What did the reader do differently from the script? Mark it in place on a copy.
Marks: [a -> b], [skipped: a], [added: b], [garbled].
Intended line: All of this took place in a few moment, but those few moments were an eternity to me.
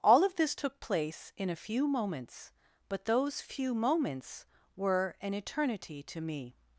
All of this took place in a few [moment, -> moments] but those few moments were an eternity to me.